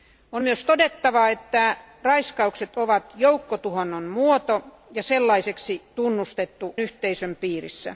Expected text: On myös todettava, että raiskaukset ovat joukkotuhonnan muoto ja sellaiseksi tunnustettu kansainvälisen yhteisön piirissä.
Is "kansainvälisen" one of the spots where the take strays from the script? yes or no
yes